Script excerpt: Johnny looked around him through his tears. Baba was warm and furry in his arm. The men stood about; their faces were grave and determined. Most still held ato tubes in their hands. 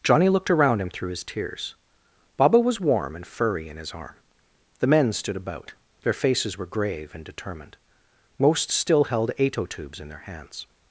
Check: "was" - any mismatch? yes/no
no